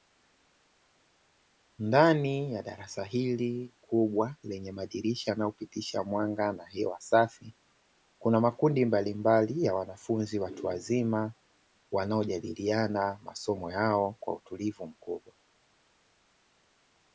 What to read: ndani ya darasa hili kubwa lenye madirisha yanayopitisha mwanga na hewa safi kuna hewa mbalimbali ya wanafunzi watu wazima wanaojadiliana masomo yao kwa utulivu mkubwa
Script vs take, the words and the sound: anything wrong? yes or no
yes